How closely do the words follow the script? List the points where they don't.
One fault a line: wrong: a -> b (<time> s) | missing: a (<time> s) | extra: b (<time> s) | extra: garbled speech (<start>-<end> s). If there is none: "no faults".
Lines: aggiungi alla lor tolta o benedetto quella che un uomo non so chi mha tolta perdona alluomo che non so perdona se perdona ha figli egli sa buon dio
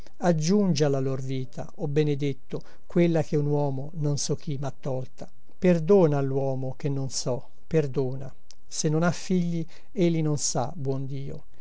wrong: tolta -> vita (1.2 s)
wrong: perdona -> non (8.9 s)
extra: non (10.2 s)